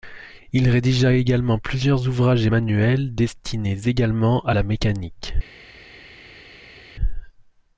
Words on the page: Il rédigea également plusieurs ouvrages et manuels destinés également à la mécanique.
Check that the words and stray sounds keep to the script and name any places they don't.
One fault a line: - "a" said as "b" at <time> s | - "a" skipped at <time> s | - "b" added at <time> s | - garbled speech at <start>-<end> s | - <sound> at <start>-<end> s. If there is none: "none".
none